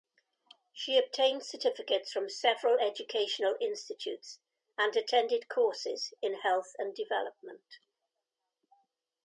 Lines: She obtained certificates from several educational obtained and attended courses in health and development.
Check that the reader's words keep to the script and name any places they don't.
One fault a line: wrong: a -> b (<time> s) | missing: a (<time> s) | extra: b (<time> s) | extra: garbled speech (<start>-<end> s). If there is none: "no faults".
wrong: obtained -> institutes (3.6 s)